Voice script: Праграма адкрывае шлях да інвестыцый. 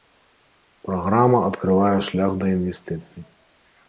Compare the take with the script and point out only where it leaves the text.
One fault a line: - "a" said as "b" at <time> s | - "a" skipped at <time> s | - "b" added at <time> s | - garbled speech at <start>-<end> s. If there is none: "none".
none